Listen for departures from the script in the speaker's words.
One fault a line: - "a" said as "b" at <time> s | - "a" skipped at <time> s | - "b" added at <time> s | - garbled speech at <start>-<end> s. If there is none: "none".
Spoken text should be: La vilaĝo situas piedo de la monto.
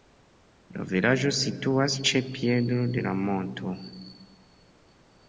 - "ĉe" added at 2.1 s